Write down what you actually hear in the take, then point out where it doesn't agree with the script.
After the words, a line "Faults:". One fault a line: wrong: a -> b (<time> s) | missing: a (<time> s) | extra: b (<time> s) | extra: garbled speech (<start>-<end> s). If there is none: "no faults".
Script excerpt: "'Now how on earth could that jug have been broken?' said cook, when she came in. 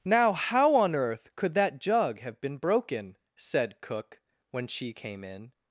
"'Now how on earth could that jug have been broken?' said cook, when she came in.
Faults:
no faults